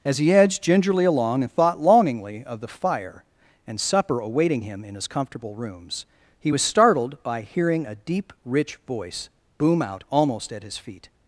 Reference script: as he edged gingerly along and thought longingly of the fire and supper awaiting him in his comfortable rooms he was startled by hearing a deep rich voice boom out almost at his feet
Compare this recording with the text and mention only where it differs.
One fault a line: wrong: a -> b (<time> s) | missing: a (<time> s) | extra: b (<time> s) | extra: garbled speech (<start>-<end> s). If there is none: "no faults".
no faults